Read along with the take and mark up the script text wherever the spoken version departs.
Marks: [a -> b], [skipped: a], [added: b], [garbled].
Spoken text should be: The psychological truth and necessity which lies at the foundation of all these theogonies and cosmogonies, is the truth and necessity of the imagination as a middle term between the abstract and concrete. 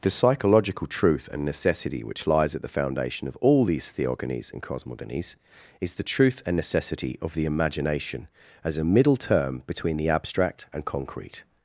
The psychological truth and necessity which lies at the foundation of all these theogonies and cosmogonies, is the truth and necessity of the imagination as a middle term between the abstract and concrete.